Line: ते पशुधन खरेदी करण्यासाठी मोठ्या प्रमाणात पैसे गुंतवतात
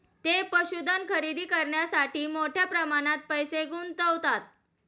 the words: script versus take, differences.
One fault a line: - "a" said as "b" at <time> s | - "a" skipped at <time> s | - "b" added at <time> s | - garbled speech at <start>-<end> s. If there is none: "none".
none